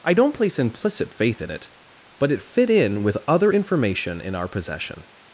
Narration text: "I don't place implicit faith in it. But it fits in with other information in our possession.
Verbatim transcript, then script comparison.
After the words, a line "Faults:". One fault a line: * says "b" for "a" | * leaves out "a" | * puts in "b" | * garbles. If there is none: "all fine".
"I don't place implicit faith in it. But it fit in with other information in our possession.
Faults:
* says "fit" for "fits"